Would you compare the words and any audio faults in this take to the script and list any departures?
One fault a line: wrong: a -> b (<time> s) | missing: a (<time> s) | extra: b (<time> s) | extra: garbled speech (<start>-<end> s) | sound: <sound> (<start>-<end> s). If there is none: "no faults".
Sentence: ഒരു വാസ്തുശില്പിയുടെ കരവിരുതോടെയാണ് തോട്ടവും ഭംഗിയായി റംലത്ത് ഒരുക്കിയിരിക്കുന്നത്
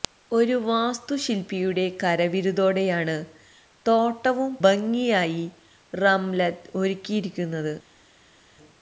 no faults